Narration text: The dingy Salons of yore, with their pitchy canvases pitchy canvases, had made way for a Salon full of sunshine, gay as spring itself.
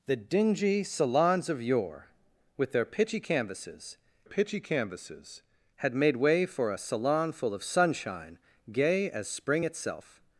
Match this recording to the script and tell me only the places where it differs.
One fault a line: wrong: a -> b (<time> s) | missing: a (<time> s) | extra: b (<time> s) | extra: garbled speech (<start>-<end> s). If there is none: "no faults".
no faults